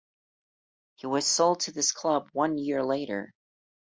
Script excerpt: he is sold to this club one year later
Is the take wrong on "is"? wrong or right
wrong